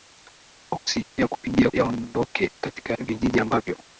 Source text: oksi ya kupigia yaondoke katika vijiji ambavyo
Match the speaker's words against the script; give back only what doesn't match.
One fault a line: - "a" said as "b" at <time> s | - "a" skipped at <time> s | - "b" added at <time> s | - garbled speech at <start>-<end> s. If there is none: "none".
none